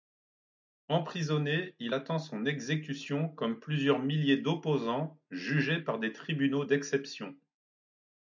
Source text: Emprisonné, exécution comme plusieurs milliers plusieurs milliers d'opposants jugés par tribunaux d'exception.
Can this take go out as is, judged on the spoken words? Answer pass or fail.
fail